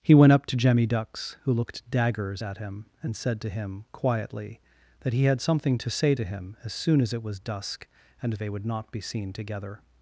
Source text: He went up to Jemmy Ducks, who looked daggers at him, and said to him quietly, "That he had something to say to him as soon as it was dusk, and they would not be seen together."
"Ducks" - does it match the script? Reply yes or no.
yes